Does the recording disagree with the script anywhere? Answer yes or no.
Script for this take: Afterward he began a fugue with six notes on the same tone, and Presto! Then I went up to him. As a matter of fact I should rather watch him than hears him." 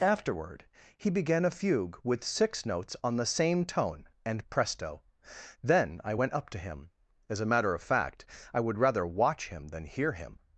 yes